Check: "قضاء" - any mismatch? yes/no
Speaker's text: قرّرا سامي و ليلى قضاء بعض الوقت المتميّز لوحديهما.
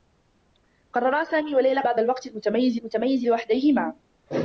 yes